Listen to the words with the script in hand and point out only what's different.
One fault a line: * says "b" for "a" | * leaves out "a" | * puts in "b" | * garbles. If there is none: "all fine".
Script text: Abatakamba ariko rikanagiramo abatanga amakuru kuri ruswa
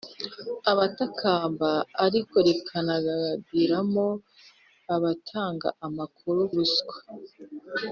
* leaves out "kuri"